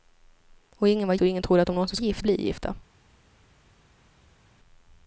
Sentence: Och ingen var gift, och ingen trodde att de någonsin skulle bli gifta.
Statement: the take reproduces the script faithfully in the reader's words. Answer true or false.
false